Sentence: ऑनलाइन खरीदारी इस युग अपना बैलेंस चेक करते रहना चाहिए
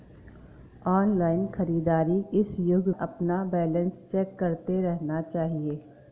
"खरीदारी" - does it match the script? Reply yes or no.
yes